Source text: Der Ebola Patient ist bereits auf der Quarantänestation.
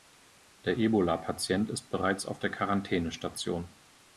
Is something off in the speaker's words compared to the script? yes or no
no